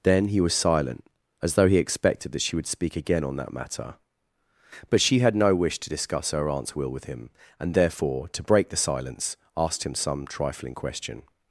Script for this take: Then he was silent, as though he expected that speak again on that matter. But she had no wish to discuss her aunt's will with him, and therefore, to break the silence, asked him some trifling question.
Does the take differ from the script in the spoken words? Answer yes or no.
yes